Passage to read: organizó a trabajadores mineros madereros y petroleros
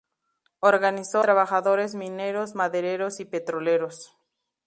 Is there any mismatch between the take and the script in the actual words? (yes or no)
yes